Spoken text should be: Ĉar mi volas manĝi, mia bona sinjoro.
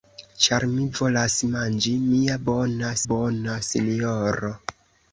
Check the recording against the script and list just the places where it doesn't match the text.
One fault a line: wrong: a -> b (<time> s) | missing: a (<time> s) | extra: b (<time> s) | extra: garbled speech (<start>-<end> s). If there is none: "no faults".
extra: bona (3.1 s)